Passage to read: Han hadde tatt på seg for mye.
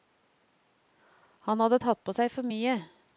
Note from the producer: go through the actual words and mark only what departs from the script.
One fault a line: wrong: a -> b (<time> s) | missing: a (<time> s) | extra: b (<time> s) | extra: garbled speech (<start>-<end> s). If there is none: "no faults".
no faults